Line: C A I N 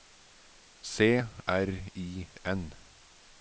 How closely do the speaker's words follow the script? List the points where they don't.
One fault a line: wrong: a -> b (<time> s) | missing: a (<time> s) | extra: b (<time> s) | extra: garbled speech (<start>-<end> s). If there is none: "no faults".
no faults